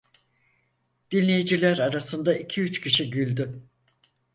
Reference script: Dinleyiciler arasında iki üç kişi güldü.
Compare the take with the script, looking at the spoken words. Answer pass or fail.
pass